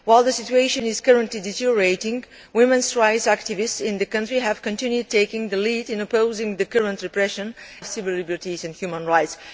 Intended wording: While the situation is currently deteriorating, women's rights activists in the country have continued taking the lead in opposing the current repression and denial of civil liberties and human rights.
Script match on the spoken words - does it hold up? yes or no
no